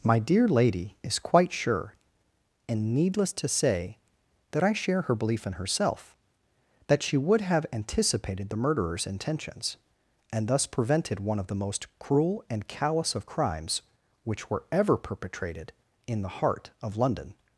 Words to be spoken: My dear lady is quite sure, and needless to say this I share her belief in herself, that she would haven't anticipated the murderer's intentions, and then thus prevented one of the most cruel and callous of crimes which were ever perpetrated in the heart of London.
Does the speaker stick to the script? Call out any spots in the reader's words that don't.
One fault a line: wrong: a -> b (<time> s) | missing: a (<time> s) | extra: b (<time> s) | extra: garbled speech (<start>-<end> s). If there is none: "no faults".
wrong: this -> that (4.5 s)
wrong: haven't -> have (7.4 s)
missing: then (10.5 s)